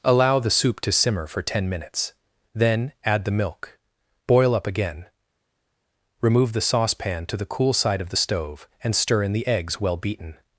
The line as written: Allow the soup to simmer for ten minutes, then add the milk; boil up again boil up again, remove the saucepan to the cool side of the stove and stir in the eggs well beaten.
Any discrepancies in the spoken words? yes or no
yes